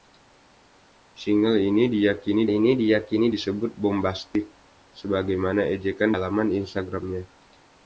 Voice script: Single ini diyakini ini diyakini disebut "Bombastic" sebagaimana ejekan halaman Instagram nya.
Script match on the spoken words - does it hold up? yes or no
yes